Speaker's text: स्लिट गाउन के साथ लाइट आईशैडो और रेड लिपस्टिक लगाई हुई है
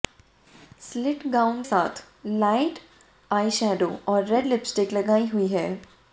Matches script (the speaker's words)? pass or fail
fail